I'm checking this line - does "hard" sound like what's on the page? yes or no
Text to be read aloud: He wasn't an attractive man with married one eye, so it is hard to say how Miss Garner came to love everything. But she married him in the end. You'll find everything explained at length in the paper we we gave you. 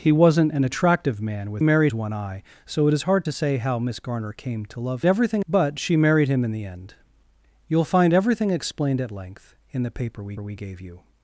yes